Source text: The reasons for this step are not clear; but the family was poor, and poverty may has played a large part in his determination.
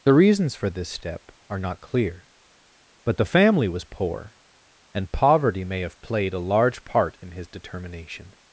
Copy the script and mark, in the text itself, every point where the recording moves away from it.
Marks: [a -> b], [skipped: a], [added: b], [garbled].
The reasons for this step are not clear; but the family was poor, and poverty may [has -> have] played a large part in his determination.